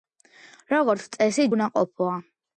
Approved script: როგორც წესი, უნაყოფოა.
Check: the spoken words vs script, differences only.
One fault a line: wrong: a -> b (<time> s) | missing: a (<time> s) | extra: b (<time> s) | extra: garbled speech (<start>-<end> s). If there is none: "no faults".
no faults